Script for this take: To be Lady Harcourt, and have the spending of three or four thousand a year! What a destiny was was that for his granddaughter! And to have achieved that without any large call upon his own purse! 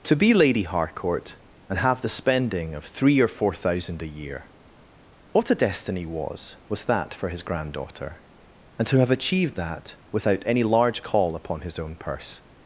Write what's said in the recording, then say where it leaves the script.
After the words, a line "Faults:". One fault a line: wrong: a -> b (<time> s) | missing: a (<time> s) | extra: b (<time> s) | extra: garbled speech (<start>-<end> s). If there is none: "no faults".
To be Lady Harcourt, and have the spending of three or four thousand a year! What a destiny was was that for his granddaughter! And to have achieved that without any large call upon his own purse!
Faults:
no faults